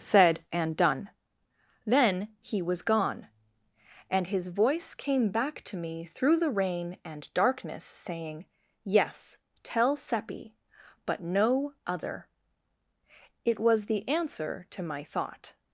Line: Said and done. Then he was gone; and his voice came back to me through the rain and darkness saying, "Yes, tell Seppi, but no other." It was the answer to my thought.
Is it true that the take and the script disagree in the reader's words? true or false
false